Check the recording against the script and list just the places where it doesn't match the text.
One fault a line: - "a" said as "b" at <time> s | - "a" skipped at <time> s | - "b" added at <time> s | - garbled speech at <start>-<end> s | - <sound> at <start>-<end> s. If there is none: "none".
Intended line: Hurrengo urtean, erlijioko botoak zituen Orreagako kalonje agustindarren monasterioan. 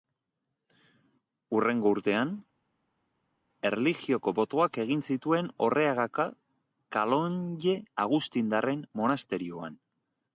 - "egin" added at 4.9 s